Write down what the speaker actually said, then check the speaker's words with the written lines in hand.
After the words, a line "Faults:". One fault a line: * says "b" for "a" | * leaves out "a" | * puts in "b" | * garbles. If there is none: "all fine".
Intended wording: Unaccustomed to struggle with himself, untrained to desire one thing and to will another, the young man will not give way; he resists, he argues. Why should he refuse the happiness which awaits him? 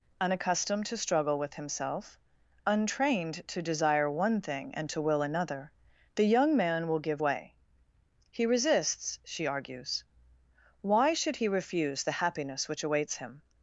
Unaccustomed to struggle with himself, untrained to desire one thing and to will another, the young man will give way; he resists, she argues. Why should he refuse the happiness which awaits him?
Faults:
* leaves out "not"
* says "she" for "he"